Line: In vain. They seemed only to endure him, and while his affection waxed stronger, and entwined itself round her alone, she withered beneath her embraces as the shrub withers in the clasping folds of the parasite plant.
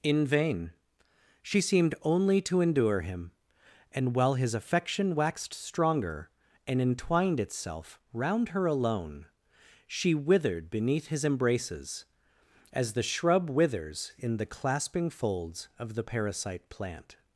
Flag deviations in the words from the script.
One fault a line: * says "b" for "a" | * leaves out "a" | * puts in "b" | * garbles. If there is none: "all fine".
* says "She" for "They"
* says "his" for "her"